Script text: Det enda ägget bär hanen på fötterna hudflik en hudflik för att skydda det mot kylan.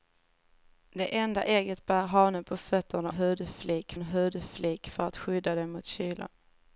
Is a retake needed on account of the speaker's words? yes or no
no